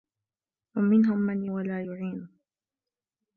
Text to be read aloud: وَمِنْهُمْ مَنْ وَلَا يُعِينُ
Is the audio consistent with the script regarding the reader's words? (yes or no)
yes